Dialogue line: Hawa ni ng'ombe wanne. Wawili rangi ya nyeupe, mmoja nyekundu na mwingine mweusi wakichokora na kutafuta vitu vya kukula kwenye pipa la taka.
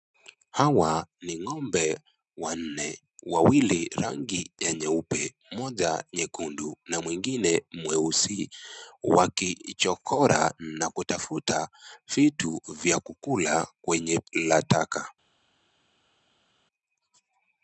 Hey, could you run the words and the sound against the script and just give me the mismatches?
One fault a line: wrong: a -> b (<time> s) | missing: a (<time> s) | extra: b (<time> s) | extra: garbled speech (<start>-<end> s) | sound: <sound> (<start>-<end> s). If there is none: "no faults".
missing: pipa (14.2 s)